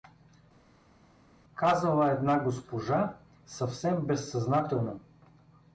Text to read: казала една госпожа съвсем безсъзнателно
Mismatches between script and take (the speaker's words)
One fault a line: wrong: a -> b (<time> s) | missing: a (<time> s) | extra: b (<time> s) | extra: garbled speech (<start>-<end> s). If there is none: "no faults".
no faults